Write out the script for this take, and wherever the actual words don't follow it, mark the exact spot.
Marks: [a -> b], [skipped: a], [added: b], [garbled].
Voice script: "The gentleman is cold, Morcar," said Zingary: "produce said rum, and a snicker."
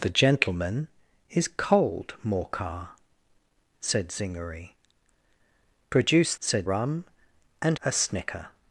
"The gentleman is cold, Morcar," said Zingary: "produce said rum, and a snicker."